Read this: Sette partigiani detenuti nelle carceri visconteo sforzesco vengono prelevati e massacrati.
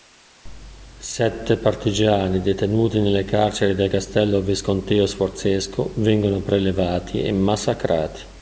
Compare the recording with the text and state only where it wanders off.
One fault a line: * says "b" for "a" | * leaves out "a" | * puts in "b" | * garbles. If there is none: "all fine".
* puts in "del castello"